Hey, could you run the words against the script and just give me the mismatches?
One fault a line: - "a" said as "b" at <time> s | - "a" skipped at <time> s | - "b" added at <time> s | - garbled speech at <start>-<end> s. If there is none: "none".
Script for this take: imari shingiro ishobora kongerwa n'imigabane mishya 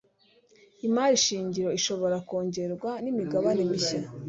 none